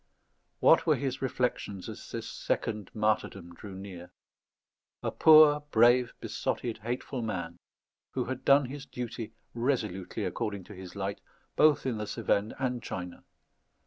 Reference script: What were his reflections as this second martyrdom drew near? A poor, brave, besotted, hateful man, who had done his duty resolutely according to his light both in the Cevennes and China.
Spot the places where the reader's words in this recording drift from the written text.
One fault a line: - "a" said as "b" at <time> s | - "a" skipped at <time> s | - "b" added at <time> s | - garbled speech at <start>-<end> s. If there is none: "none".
none